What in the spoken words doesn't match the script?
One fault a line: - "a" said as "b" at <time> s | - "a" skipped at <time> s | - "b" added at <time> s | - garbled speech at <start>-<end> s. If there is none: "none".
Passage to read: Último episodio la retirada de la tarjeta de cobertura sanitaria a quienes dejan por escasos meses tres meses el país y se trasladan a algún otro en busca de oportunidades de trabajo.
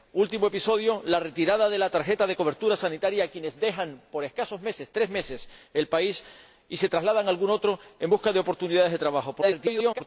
- garbled speech at 9.4-10.0 s